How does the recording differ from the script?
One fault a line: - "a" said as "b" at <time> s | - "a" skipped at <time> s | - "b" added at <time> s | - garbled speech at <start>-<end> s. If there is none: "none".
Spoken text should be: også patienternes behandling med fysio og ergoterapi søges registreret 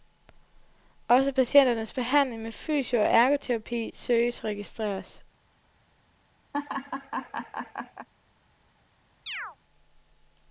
none